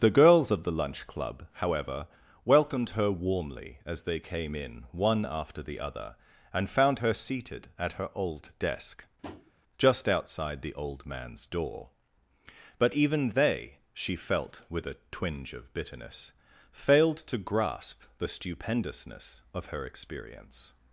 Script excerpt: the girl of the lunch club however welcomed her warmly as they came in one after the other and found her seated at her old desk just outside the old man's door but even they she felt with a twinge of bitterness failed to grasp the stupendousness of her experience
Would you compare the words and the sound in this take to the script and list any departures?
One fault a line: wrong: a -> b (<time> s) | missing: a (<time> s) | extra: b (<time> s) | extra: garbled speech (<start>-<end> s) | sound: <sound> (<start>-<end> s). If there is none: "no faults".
wrong: girl -> girls (0.2 s)
sound: tap (9.2-9.5 s)